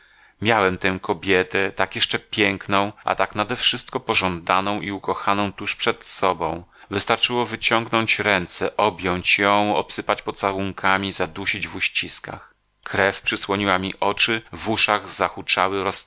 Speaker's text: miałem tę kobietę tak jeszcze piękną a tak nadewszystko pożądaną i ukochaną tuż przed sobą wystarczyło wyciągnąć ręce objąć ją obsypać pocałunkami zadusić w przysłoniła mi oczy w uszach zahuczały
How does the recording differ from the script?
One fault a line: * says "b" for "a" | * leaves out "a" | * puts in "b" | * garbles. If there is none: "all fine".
* puts in "uściskach krew"